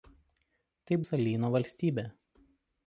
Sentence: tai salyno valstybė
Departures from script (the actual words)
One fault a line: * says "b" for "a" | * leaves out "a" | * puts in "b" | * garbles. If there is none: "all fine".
all fine